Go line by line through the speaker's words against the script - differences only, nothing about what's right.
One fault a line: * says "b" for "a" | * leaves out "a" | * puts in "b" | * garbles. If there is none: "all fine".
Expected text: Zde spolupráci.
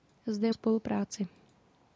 all fine